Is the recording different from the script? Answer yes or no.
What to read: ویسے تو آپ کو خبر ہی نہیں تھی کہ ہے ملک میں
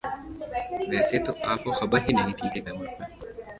no